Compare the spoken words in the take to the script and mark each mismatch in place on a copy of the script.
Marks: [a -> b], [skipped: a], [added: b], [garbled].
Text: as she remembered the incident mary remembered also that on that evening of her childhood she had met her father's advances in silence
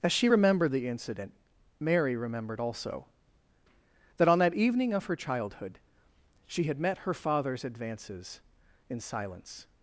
as she remembered the incident mary remembered also that on that evening of her childhood she had met her father's advances in silence